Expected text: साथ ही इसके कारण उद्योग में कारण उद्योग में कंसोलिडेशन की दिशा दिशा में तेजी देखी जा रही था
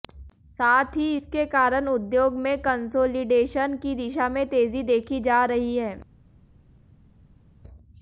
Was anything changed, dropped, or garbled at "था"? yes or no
yes